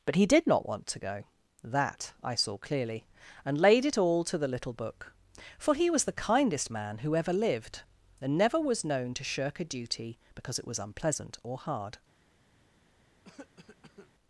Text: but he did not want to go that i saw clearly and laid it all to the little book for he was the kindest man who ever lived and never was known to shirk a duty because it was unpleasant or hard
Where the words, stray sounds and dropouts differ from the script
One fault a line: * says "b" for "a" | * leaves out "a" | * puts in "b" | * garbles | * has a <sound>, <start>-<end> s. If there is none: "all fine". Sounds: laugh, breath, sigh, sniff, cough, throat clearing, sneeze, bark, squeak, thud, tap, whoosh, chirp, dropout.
* has a cough, 13.2-14.1 s